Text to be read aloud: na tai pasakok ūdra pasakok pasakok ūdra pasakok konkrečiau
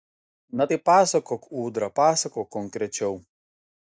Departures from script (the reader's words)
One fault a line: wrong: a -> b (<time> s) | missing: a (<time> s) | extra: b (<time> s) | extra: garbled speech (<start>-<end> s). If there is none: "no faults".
missing: pasakok ūdra pasakok (2.5 s)